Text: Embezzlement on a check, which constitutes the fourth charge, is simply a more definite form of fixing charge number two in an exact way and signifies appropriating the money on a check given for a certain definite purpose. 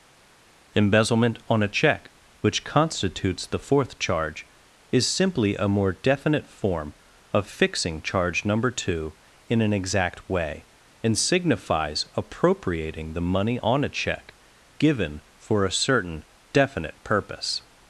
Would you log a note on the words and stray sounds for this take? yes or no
no